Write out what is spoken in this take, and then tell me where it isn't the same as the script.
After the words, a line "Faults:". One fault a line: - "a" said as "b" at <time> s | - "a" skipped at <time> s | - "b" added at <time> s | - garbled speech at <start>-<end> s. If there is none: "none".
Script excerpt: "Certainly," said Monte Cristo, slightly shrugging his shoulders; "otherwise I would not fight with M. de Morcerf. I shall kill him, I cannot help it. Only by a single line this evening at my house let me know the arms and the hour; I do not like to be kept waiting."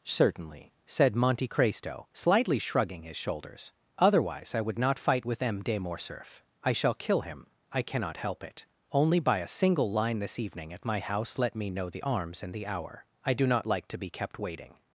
"Certainly," said Monte Cristo, slightly shrugging his shoulders; "otherwise I would not fight with M. de Morcerf. I shall kill him, I cannot help it. Only by a single line this evening at my house let me know the arms and the hour; I do not like to be kept waiting."
Faults:
none